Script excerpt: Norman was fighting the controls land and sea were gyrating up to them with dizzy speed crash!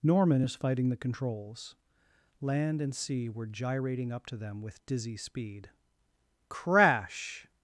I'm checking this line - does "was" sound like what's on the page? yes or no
no